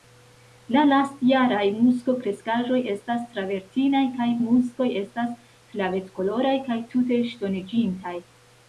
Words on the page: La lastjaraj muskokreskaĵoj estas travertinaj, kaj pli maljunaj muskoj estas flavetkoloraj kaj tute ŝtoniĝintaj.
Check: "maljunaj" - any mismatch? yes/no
yes